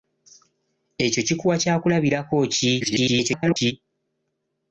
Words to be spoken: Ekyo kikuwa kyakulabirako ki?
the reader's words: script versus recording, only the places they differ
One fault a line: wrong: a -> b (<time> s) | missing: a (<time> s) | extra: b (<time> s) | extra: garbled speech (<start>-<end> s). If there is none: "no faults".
extra: garbled speech (2.8-3.7 s)